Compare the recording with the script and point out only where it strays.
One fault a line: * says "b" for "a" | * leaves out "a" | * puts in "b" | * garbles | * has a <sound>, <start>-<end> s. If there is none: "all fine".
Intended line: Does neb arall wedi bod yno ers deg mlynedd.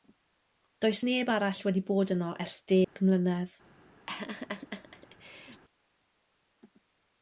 * has a dropout, 2.8-3.0 s
* has a laugh, 4.1-5.6 s